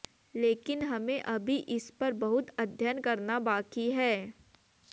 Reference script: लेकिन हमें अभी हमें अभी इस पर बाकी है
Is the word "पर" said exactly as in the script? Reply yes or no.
no